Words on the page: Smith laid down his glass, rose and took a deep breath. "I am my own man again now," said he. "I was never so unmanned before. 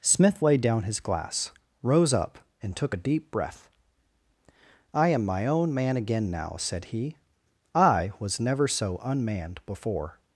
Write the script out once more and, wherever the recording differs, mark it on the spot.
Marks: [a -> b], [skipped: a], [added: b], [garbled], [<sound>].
Smith laid down his glass, rose [added: up] and took a deep breath. "I am my own man again now," said he. "I was never so unmanned before.